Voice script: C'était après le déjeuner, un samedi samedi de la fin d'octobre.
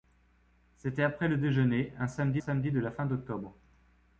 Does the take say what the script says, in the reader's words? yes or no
yes